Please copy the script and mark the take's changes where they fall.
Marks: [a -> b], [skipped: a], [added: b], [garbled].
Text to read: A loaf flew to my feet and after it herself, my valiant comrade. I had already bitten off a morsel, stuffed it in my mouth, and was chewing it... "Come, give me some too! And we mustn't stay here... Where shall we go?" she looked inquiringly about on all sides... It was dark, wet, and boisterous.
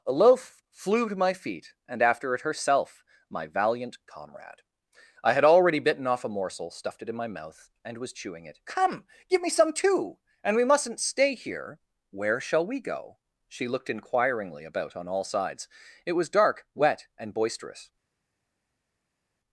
A loaf flew to my feet and after it herself, my valiant comrade. I had already bitten off a morsel, stuffed it in my mouth, and was chewing it... "Come, give me some too! And we mustn't stay here... Where shall we go?" she looked inquiringly about on all sides... It was dark, wet, and boisterous.